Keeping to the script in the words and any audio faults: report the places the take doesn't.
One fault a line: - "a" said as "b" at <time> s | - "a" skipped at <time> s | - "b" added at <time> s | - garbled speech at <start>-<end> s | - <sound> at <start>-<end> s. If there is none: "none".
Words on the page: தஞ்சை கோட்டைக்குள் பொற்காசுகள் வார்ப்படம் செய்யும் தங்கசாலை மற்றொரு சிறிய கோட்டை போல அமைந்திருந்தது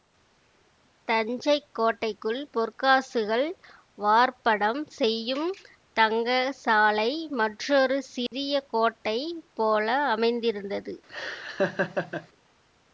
- dropout at 8.3-8.3 s
- laugh at 11.1-12.3 s